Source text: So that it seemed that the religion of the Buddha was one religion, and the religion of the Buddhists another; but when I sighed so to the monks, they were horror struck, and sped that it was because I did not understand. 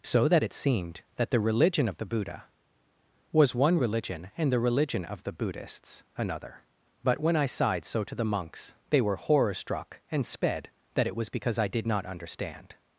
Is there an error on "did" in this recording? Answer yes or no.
no